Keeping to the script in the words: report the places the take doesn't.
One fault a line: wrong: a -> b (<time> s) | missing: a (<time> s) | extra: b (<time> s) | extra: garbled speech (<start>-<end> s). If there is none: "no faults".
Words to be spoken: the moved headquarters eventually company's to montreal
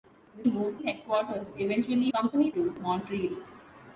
no faults